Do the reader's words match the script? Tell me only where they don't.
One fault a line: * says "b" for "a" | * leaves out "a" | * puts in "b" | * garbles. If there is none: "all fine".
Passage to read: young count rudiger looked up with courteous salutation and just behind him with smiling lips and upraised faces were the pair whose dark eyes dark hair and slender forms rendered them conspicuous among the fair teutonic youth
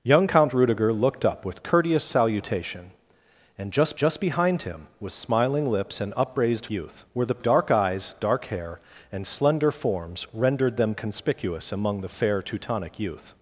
* puts in "just"
* says "youth" for "faces"
* leaves out "pair whose"